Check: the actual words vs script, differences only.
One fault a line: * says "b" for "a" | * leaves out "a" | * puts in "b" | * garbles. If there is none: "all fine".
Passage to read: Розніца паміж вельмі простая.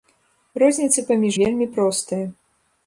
all fine